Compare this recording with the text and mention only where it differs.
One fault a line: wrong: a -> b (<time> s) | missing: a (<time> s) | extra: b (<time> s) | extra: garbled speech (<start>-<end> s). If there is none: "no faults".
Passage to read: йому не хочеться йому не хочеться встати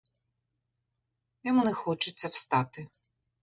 missing: йому не хочеться (2.3 s)